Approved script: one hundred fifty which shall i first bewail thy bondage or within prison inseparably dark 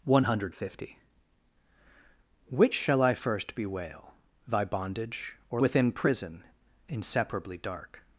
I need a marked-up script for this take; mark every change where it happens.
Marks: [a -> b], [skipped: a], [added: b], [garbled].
one hundred fifty which shall i first bewail thy bondage or within prison inseparably dark